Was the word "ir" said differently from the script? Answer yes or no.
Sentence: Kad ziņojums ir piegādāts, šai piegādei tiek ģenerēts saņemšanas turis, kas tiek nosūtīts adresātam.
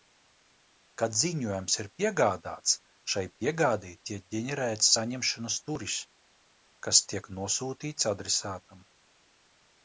no